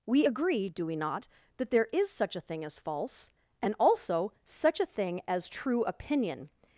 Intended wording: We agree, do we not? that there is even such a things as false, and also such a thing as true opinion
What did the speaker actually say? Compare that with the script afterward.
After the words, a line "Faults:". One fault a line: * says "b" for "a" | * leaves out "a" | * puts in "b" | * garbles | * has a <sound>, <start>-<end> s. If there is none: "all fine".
We agree, do we not? that there is such a thing as false, and also such a thing as true opinion
Faults:
* leaves out "even"
* says "thing" for "things"